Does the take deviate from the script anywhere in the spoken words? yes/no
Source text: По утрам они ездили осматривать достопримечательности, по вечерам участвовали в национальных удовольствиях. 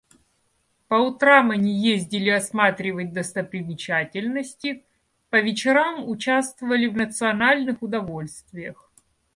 no